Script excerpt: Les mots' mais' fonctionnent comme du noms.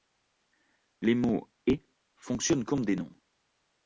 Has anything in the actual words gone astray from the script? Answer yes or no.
yes